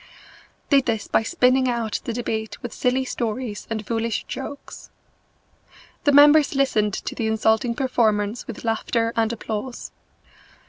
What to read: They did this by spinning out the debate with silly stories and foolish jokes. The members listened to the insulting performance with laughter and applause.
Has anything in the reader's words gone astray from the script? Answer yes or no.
yes